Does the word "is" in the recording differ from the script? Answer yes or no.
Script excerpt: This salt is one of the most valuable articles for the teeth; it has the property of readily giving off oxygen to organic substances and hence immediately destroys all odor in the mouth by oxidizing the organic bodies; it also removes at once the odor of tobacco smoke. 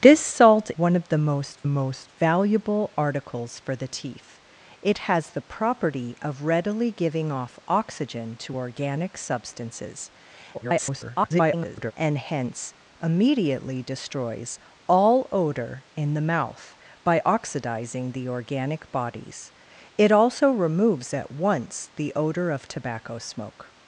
yes